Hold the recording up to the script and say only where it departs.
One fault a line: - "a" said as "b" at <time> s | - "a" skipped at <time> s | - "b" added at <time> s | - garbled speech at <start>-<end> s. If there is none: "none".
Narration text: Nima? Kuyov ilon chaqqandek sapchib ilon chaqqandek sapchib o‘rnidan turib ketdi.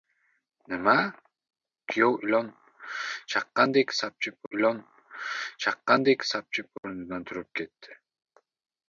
none